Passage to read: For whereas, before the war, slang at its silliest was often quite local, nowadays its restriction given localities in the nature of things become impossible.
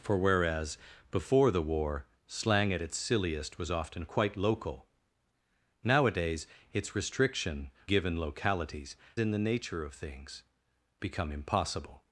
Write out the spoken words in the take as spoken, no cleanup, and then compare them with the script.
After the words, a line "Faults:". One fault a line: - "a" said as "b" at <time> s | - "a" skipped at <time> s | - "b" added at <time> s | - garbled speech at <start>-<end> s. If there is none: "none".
For whereas, before the war, slang at its silliest was often quite local, nowadays its restriction given localities in the nature of things become impossible.
Faults:
none